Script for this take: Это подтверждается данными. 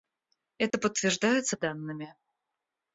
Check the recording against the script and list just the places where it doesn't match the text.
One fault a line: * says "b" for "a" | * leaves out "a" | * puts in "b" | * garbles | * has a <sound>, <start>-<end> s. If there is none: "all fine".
* has a dropout, 0.7-0.7 s